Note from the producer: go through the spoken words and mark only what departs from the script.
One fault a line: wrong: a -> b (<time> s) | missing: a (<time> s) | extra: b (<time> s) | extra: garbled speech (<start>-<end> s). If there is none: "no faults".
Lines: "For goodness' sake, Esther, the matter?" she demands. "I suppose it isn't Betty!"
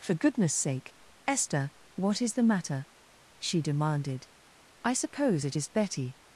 extra: what is (1.9 s)
wrong: demands -> demanded (3.6 s)
wrong: isn't -> is (5.5 s)